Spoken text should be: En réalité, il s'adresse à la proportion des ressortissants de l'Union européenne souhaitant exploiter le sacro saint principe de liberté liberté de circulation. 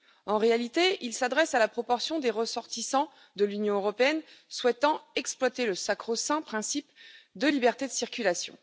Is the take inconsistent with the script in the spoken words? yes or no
yes